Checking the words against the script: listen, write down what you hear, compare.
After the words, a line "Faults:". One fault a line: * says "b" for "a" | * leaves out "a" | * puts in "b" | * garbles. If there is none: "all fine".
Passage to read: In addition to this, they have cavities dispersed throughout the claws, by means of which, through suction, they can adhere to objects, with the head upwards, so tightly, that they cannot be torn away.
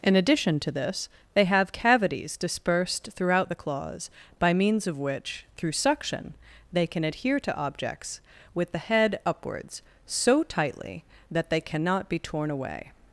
In addition to this, they have cavities dispersed throughout the claws, by means of which, through suction, they can adhere to objects, with the head upwards, so tightly, that they cannot be torn away.
Faults:
all fine